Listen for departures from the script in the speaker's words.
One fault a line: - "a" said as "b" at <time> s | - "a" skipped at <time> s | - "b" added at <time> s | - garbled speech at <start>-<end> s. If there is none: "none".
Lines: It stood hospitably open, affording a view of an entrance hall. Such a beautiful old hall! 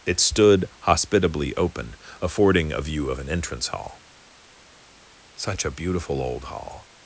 none